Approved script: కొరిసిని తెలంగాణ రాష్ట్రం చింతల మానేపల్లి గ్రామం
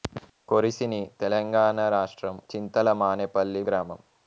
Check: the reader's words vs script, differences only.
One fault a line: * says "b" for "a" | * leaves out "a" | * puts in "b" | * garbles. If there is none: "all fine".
all fine